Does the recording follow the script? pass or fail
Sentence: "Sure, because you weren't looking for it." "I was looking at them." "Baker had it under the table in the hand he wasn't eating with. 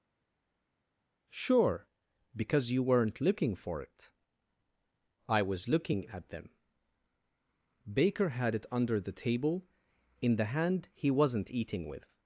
pass